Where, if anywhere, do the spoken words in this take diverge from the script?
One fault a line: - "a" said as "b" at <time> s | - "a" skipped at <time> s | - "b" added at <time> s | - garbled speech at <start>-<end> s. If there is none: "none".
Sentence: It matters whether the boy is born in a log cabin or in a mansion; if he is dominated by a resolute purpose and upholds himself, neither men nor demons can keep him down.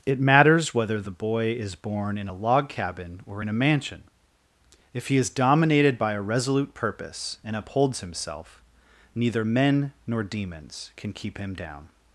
none